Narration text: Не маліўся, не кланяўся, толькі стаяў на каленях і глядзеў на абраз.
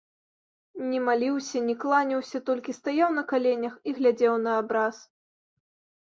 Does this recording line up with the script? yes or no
yes